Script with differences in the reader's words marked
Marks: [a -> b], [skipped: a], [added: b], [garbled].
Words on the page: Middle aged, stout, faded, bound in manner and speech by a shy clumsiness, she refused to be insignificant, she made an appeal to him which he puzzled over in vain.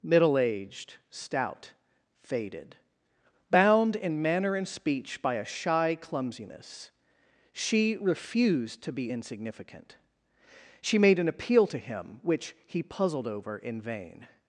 Middle aged, stout, faded, bound in manner and speech by a shy clumsiness, she refused to be insignificant, she made an appeal to him which he puzzled over in vain.